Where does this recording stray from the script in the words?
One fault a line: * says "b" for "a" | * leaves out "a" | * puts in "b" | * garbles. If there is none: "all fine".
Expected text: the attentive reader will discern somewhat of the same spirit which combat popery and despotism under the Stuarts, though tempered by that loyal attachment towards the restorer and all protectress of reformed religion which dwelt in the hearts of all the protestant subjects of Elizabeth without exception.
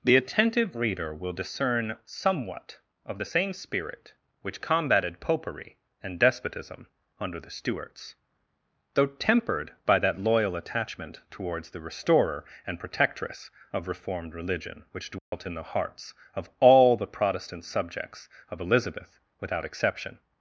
* says "combated" for "combat"
* leaves out "all"